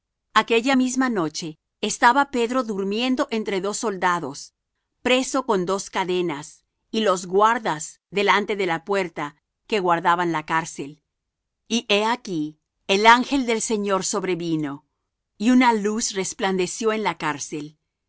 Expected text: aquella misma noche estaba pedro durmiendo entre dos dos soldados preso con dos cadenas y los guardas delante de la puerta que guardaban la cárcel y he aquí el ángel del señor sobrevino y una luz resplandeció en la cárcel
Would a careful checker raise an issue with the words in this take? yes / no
yes